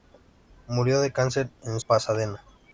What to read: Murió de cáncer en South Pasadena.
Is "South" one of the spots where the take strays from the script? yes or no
yes